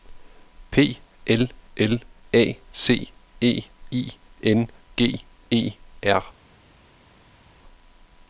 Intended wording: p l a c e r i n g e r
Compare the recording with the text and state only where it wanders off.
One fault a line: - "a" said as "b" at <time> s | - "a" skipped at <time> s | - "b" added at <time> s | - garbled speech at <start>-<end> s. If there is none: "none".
- "l" added at 1.8 s
- "r" skipped at 3.6 s